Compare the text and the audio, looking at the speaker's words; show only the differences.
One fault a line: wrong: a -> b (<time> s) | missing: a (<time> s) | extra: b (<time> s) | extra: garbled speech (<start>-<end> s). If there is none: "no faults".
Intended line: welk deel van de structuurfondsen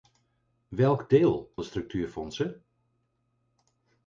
missing: van (1.5 s)